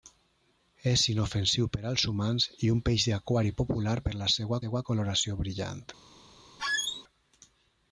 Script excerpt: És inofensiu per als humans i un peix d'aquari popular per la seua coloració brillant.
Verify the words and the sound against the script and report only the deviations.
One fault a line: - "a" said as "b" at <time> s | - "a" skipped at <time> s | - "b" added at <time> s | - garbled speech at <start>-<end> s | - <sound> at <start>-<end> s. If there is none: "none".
- "seua" added at 4.6 s
- squeak at 6.6-7.0 s